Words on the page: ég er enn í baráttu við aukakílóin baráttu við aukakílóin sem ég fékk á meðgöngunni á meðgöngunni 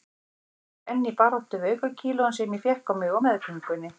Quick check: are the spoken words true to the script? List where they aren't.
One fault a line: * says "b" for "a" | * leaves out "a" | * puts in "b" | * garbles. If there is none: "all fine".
* leaves out "baráttu við aukakílóin"
* says "mig" for "meðgöngunni"